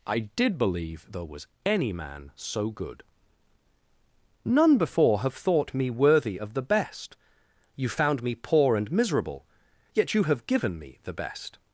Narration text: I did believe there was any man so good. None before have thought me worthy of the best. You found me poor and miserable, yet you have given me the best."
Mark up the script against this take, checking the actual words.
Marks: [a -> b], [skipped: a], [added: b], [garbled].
I did believe there was any man so good. None before have thought me worthy of the best. You found me poor and miserable, yet you have given me the best."